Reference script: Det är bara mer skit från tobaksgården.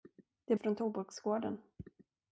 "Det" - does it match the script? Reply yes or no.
yes